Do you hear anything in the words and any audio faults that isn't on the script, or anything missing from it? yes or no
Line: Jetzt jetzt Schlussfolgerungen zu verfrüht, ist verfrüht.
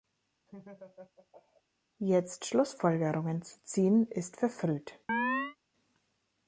yes